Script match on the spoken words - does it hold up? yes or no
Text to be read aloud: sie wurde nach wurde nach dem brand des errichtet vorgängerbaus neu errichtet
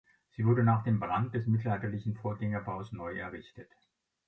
no